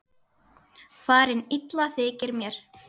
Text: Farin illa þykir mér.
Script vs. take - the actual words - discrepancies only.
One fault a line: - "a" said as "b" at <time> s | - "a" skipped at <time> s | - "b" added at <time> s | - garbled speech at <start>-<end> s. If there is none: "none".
none